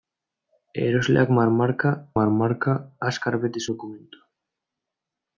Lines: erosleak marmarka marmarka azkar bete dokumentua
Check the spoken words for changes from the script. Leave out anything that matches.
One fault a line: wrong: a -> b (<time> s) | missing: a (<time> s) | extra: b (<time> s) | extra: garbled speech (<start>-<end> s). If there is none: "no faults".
no faults